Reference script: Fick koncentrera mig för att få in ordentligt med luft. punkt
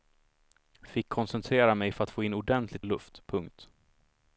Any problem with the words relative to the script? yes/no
yes